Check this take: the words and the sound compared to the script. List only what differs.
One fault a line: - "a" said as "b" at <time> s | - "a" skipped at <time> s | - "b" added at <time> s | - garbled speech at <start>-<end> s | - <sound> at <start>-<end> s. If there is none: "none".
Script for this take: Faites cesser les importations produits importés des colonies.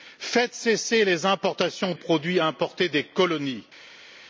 none